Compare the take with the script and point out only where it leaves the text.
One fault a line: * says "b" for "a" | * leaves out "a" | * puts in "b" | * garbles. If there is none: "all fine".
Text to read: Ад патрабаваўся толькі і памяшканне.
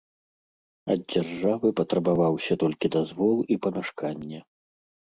* puts in "дзяржавы"
* puts in "дазвол"